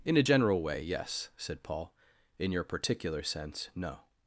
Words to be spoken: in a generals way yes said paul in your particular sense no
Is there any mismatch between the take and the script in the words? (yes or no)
yes